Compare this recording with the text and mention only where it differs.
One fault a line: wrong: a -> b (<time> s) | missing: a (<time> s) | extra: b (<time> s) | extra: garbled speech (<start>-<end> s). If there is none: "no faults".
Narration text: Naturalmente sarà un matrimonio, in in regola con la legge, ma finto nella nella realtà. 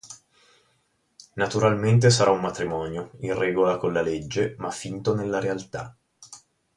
missing: in (3.4 s)
missing: nella (5.4 s)